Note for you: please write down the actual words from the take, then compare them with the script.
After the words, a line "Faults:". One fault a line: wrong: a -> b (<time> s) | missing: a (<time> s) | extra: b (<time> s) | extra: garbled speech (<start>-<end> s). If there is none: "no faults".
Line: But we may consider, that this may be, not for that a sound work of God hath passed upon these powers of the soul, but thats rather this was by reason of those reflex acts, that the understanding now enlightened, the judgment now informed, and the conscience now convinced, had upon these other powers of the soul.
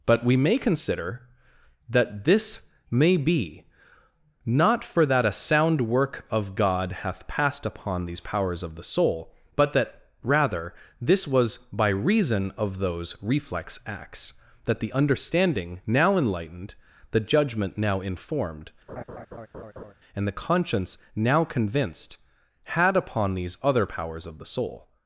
But we may consider, that this may be, not for that a sound work of God hath passed upon these powers of the soul, but that rather this was by reason of those reflex acts, that the understanding now enlightened, the judgment now informed, and the conscience now convinced, had upon these other powers of the soul.
Faults:
wrong: thats -> that (9.7 s)